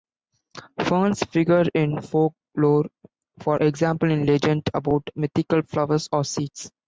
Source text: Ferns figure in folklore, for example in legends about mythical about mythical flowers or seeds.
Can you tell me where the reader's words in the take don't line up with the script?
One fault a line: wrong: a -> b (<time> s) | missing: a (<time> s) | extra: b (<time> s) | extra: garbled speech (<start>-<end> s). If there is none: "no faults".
missing: about mythical (5.6 s)